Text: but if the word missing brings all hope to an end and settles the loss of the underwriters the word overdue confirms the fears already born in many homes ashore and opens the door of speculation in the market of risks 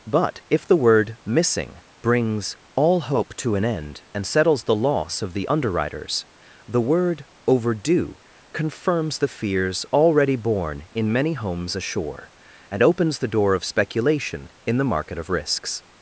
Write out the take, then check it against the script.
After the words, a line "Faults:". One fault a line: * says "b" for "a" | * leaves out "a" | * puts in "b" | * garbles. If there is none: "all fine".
but if the word missing brings all hope to an end and settles the loss of the underwriters the word overdue confirms the fears already born in many homes ashore and opens the door of speculation in the market of risks
Faults:
all fine